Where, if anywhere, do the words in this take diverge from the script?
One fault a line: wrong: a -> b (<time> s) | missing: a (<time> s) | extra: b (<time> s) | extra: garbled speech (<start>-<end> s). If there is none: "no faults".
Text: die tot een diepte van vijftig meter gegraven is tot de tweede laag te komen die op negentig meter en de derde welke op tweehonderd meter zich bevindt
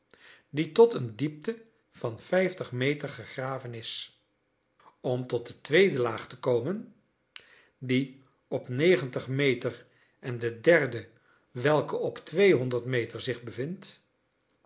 extra: om (5.0 s)